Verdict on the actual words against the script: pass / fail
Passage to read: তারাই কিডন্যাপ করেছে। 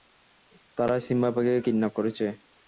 fail